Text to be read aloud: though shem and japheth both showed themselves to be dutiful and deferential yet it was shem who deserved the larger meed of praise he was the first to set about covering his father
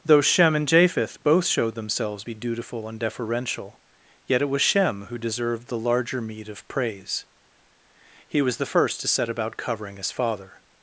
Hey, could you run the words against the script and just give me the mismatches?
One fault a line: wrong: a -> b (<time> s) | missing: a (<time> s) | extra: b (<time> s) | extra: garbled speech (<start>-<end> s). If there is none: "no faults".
missing: to (2.2 s)